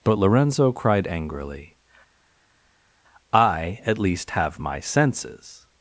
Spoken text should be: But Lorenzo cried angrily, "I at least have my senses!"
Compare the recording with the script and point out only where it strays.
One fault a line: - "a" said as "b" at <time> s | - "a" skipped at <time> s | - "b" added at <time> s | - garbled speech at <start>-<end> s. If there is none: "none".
none